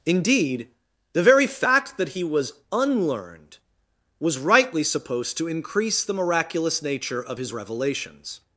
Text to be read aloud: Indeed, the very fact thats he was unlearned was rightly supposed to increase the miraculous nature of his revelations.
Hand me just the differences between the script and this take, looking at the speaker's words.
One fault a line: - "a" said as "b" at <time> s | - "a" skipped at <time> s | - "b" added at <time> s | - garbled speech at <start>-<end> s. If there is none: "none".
- "thats" said as "that" at 2.0 s